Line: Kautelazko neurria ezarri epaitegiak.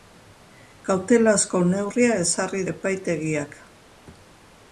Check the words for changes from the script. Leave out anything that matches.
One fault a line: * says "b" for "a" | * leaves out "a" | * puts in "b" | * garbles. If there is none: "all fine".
all fine